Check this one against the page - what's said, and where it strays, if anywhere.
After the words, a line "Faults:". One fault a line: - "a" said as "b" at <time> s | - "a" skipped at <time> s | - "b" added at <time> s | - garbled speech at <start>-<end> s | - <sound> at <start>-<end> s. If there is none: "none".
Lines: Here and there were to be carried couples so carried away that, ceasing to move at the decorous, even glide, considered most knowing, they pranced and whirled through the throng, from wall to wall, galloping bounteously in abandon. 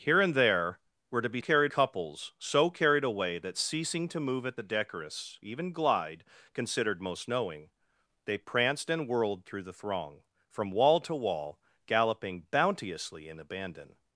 Here and there were to be carried couples so carried away that, ceasing to move at the decorous, even glide, considered most knowing, they pranced and whirled through the throng, from wall to wall, galloping bounteously in abandon.
Faults:
none